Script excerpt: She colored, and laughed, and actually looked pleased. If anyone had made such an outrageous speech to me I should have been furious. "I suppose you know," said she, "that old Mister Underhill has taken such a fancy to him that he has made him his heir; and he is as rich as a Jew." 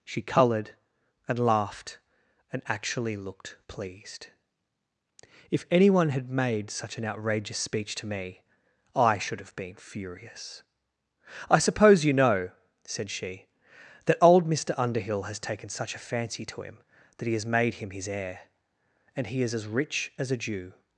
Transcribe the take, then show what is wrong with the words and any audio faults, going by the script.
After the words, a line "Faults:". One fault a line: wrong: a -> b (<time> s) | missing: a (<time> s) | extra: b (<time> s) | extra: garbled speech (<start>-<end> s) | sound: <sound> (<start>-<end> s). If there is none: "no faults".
She colored, and laughed, and actually looked pleased. If anyone had made such an outrageous speech to me I should have been furious. "I suppose you know," said she, "that old Mister Underhill has taken such a fancy to him that he has made him his heir; and he is as rich as a Jew."
Faults:
no faults